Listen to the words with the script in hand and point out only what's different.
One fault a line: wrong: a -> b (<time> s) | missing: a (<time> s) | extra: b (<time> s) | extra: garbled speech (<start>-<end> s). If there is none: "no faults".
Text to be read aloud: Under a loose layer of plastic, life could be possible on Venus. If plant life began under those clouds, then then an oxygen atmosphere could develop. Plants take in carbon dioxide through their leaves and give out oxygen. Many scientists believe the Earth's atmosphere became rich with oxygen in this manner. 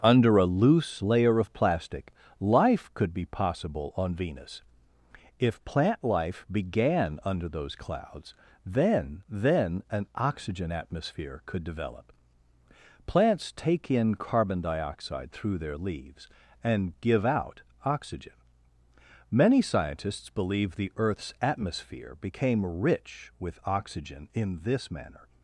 no faults